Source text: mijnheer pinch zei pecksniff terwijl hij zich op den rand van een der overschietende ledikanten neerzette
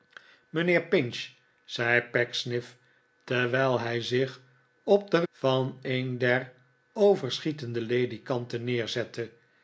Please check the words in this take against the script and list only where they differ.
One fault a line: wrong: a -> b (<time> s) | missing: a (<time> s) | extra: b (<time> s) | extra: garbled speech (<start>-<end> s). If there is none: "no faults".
missing: rand (5.2 s)